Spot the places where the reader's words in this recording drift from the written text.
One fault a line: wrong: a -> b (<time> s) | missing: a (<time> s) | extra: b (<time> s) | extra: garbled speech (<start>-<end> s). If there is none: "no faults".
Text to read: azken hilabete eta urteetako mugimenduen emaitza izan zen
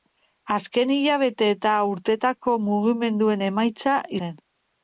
missing: izan (4.0 s)